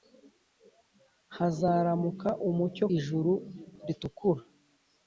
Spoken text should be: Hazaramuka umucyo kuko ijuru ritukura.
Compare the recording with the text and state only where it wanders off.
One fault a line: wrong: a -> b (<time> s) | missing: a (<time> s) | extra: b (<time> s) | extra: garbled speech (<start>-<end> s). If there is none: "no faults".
missing: kuko (2.9 s)